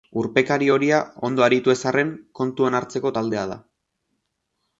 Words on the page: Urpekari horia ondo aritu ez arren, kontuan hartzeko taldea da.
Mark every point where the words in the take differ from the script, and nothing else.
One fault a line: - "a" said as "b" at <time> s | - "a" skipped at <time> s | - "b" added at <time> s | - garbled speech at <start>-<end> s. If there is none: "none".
none